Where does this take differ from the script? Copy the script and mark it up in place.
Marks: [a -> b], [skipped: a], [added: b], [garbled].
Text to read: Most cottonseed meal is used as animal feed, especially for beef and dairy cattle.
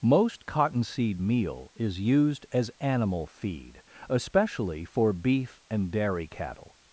Most cottonseed meal is used as animal feed, especially for beef and dairy cattle.